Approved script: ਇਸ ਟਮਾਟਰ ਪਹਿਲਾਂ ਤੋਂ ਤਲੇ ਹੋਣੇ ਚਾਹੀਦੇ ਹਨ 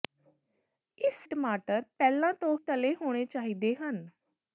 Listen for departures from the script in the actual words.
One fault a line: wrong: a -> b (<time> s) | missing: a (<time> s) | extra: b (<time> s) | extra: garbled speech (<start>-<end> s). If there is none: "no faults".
no faults